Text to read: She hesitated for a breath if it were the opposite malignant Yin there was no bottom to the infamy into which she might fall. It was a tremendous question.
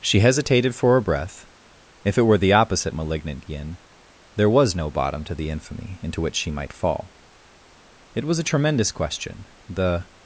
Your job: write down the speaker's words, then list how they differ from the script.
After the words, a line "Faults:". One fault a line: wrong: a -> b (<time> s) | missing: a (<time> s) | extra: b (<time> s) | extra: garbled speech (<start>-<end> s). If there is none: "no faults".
She hesitated for a breath if it were the opposite malignant Yin there was no bottom to the infamy into which she might fall. It was a tremendous question. The
Faults:
extra: The (9.7 s)